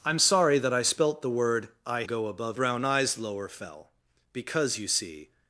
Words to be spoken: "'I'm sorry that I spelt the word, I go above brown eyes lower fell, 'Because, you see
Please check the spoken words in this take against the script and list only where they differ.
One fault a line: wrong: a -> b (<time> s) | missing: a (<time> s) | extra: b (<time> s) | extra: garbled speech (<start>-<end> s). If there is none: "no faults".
no faults